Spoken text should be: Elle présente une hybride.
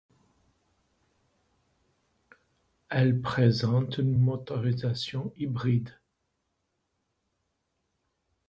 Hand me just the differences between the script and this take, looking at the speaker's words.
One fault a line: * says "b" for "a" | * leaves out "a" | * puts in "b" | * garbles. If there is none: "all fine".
* puts in "motorisation"